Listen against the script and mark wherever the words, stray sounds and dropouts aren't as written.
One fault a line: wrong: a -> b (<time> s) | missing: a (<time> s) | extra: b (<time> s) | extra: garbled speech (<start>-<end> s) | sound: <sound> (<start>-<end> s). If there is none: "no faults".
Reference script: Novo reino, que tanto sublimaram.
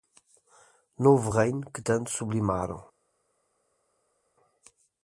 no faults